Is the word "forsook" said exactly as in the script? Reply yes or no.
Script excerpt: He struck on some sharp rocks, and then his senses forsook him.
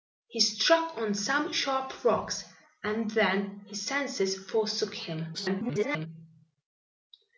yes